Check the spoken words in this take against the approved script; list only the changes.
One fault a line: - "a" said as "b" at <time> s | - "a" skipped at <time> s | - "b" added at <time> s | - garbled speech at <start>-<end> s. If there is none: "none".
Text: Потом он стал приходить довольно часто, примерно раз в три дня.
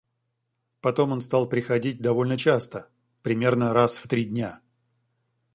none